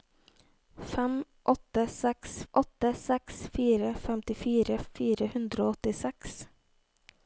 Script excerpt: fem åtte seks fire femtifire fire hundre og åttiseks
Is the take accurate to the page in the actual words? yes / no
no